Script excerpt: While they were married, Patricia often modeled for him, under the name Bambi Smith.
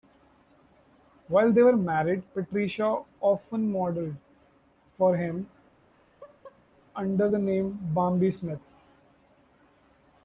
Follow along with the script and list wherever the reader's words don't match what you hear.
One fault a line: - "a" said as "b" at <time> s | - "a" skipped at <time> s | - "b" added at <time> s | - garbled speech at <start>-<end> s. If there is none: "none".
none